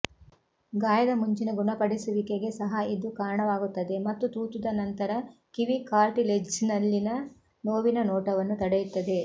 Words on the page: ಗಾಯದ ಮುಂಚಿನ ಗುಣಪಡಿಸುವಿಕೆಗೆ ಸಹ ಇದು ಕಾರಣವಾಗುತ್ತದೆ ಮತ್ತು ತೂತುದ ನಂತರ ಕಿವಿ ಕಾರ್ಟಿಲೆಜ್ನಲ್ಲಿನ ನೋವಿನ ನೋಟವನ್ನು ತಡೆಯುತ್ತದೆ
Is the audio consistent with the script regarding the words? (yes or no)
yes